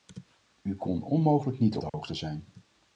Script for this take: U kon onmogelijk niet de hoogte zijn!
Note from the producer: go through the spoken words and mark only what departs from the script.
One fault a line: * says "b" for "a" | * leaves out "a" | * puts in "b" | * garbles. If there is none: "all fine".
all fine